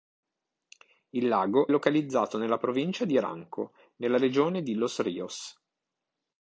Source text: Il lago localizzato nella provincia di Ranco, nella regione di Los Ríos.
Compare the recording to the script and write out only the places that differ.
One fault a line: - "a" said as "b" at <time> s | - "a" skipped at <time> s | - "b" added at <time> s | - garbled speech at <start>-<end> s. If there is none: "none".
none